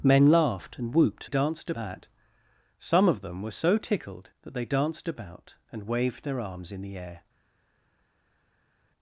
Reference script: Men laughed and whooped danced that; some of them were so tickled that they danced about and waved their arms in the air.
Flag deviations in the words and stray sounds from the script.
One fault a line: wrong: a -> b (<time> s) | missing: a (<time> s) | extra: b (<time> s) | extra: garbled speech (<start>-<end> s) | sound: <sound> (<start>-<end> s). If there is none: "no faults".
no faults